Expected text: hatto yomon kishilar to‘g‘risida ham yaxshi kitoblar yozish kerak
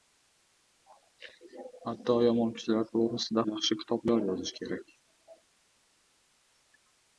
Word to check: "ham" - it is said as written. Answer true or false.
false